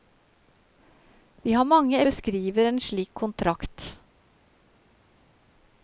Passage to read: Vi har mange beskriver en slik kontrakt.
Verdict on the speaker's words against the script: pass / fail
pass